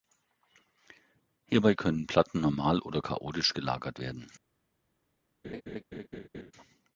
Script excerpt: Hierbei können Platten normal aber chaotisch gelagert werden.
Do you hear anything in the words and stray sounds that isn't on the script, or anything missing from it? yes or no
yes